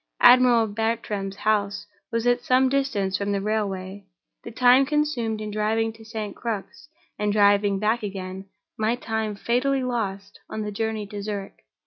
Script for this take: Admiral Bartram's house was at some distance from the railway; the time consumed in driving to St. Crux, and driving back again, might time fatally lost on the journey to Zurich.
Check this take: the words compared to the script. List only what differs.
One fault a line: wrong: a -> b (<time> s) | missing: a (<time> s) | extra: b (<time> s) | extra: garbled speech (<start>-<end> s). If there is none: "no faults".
no faults